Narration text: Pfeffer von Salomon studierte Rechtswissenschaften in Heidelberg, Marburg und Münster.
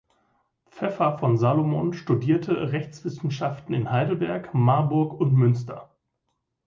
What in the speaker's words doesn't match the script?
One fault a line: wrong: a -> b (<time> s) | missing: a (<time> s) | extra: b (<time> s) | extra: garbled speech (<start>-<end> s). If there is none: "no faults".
no faults